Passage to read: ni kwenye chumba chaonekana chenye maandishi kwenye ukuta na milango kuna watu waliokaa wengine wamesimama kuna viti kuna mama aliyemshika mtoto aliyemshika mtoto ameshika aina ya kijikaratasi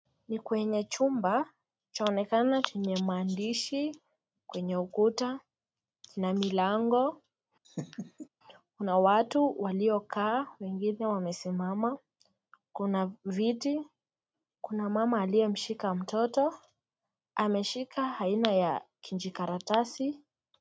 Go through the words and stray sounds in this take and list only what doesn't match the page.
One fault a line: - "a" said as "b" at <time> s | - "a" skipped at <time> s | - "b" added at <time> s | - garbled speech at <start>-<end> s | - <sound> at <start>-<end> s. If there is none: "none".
- laugh at 7.6-8.3 s
- "aliyemshika mtoto" skipped at 16.5 s